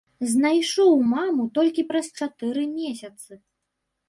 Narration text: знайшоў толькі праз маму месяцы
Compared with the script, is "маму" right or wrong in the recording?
wrong